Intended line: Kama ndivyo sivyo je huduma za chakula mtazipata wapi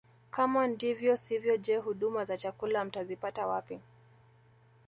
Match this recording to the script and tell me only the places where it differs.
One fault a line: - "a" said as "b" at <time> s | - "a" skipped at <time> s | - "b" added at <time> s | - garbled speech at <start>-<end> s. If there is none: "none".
none